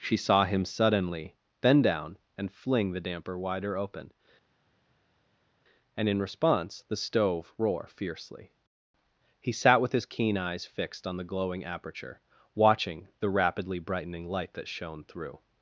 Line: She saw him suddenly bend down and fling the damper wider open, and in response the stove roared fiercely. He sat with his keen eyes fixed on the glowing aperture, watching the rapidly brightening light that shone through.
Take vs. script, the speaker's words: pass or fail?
fail